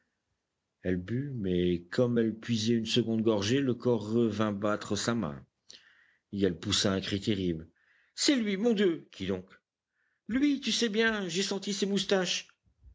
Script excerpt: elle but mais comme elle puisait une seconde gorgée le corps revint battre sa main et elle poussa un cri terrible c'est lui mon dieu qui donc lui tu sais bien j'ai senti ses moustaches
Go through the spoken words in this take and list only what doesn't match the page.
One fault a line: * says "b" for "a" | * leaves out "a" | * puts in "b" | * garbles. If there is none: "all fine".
all fine